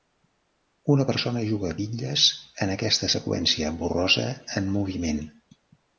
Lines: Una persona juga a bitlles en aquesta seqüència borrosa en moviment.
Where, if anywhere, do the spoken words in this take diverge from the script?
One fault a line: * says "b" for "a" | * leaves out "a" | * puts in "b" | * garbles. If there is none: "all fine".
all fine